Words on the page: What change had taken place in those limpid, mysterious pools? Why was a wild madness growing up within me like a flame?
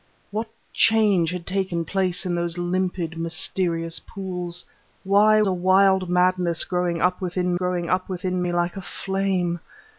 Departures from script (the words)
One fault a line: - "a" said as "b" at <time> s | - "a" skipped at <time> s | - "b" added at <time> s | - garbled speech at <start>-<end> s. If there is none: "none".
- "was" skipped at 5.4 s
- "growing up within" added at 7.5 s